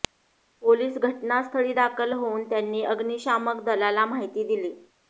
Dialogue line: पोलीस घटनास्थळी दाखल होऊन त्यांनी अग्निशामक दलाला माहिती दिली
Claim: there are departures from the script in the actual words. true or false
false